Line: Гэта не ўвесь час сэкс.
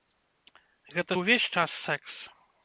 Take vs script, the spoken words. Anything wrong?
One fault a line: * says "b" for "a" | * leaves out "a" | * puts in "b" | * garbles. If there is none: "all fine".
all fine